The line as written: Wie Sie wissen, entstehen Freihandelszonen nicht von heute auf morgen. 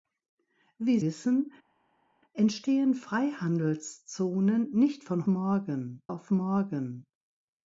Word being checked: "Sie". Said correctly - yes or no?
no